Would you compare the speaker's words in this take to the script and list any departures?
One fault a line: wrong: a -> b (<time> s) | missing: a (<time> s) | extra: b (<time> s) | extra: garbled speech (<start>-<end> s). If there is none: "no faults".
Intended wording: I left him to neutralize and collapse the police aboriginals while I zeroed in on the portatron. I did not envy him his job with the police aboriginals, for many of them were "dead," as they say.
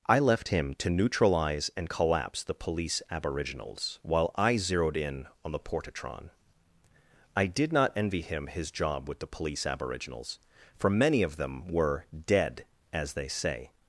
no faults